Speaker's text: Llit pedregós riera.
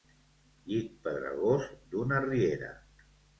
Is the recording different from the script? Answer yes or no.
yes